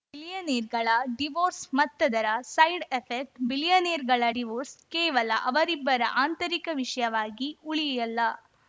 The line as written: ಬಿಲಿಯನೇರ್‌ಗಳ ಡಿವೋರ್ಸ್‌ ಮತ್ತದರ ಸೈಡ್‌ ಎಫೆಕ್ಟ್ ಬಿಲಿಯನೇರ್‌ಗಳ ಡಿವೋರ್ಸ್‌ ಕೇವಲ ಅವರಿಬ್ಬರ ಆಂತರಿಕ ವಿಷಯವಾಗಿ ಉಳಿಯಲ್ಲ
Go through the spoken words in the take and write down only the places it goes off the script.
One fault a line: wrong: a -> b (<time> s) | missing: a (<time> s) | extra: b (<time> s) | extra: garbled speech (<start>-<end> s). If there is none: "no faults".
no faults